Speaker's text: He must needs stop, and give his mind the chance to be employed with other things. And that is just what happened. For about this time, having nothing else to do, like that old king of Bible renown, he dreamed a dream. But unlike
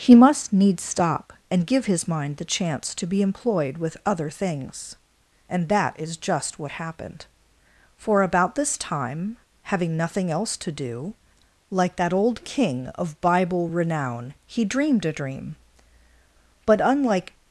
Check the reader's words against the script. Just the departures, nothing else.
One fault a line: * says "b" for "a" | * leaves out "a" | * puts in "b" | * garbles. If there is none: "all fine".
all fine